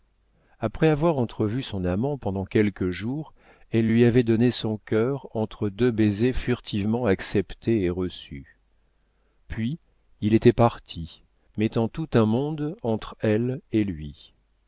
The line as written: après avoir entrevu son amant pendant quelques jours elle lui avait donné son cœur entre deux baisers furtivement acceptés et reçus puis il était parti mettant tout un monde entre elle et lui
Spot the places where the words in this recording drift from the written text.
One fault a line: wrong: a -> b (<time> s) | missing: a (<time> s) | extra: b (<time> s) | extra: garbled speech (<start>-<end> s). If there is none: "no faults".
no faults